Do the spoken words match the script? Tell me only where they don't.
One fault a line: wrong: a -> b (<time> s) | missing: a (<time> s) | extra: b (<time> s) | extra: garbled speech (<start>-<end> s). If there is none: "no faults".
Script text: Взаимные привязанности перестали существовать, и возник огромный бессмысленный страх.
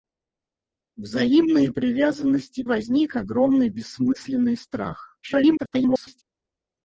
missing: перестали существовать и (2.6 s)
extra: garbled speech (5.2-6.2 s)